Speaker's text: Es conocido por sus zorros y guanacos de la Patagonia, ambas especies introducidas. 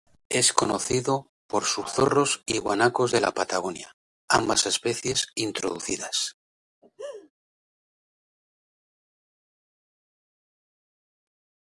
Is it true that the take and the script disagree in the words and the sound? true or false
true